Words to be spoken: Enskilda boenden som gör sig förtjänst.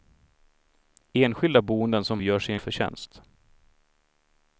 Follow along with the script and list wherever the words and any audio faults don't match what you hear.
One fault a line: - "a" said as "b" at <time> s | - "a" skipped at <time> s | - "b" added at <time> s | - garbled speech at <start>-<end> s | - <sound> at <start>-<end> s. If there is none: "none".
none